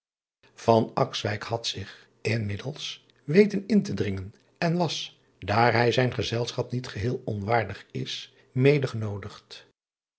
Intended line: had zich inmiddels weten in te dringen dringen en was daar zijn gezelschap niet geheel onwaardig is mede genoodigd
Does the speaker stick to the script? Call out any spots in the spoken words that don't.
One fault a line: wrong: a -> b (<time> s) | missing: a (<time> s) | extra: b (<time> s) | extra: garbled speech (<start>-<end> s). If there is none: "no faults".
missing: dringen (4.3 s)
extra: hij (5.7 s)